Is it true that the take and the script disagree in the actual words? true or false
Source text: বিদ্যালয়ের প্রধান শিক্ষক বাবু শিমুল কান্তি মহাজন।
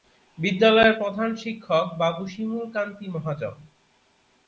false